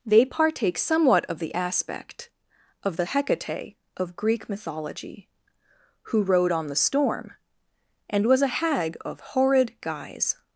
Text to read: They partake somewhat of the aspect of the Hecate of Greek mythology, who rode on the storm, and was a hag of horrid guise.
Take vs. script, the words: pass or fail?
pass